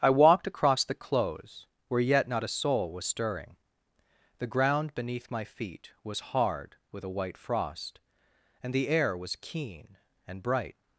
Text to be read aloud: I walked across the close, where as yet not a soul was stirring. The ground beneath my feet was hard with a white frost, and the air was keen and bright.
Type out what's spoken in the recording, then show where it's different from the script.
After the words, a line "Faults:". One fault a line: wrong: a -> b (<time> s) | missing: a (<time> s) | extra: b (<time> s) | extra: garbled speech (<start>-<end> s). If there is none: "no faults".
I walked across the close, where yet not a soul was stirring. The ground beneath my feet was hard with a white frost, and the air was keen and bright.
Faults:
missing: as (2.0 s)